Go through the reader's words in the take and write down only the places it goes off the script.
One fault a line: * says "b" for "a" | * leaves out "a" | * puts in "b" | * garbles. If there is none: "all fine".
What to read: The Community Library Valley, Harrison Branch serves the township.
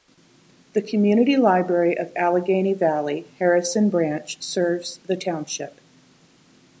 * puts in "of Allegheny"